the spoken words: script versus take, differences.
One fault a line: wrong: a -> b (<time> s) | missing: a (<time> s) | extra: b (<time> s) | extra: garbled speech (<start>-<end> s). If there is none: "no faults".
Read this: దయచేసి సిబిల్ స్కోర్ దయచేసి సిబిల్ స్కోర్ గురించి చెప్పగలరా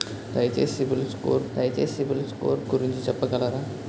no faults